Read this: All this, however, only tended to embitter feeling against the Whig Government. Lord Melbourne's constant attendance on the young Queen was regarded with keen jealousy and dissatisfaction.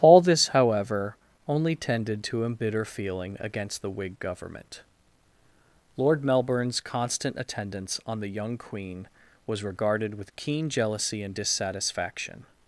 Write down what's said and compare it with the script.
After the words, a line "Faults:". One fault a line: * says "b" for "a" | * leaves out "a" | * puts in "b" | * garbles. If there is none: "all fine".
All this, however, only tended to embitter feeling against the Whig Government. Lord Melbourne's constant attendance on the young Queen was regarded with keen jealousy and dissatisfaction.
Faults:
all fine